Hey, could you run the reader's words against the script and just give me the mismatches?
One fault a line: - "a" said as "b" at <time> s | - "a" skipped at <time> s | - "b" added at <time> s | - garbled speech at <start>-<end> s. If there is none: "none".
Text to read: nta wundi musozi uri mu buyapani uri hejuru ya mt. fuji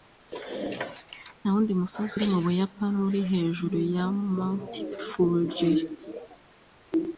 none